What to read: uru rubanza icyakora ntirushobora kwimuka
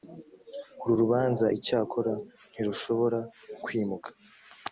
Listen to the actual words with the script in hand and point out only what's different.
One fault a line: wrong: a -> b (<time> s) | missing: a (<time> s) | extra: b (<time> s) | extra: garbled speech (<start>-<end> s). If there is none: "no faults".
no faults